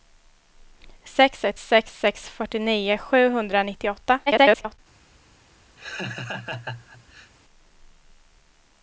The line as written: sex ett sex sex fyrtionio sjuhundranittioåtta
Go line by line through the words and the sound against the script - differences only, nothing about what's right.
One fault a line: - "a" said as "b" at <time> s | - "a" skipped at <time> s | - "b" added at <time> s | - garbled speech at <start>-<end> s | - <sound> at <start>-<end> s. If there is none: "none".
- garbled speech at 4.3-4.8 s
- laugh at 5.8-7.3 s